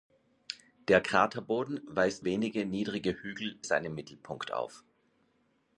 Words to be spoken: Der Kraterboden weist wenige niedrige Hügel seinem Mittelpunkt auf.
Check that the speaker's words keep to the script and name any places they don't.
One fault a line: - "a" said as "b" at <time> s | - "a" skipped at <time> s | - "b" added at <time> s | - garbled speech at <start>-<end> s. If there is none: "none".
none